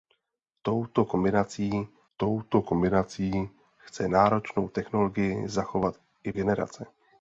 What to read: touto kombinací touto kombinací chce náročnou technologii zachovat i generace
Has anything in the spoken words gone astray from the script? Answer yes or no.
no